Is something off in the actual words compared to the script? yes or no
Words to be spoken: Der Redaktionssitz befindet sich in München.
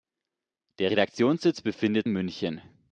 yes